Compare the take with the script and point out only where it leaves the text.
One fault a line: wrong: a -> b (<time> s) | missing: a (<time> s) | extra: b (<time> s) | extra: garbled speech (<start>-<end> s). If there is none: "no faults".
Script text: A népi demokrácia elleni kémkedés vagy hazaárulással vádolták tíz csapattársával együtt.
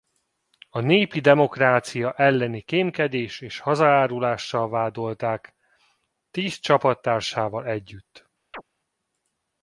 wrong: vagy -> és (3.4 s)